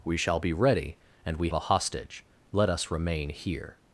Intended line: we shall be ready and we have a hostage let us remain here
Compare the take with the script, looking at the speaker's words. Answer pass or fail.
fail